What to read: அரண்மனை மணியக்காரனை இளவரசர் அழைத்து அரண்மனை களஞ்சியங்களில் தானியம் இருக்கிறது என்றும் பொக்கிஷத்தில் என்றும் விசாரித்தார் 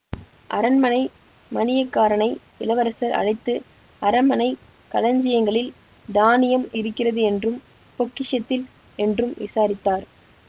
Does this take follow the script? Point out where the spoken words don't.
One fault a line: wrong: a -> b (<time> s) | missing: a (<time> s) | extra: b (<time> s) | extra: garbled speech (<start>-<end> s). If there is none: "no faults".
no faults